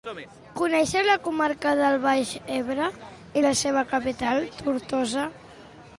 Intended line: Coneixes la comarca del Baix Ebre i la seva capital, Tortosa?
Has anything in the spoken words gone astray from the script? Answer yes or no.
no